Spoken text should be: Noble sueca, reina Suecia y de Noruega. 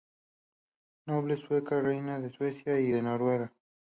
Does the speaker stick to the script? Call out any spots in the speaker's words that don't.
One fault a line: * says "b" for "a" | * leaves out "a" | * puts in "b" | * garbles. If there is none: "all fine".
* puts in "de"